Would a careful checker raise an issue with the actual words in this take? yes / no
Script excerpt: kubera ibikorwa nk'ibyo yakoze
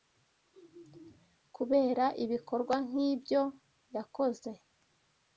no